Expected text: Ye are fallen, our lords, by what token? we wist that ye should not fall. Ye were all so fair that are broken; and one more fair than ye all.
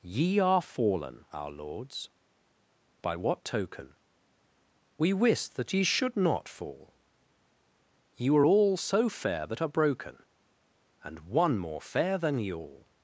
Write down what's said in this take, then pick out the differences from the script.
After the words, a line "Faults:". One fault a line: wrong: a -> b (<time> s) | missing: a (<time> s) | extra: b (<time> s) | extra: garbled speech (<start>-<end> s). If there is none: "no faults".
Ye are fallen, our lords, by what token? we wist that ye should not fall. Ye were all so fair that are broken; and one more fair than ye all.
Faults:
no faults